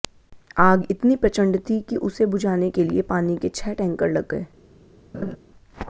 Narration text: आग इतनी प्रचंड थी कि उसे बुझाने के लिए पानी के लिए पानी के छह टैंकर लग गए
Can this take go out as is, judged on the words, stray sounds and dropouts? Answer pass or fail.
fail